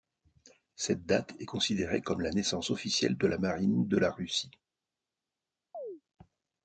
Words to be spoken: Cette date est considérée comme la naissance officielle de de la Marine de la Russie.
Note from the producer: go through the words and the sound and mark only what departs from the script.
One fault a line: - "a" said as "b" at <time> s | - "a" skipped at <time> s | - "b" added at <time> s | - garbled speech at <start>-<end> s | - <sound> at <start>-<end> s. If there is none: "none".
- "de" skipped at 3.3 s
- chirp at 5.7-6.0 s